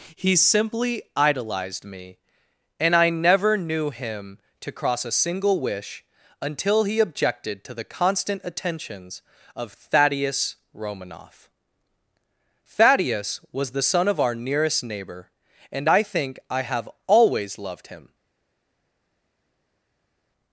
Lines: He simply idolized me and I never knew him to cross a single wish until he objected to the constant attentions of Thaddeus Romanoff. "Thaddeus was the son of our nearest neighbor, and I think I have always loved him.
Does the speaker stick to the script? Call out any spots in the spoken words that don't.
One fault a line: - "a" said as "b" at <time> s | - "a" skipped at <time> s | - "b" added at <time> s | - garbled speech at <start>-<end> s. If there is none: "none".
none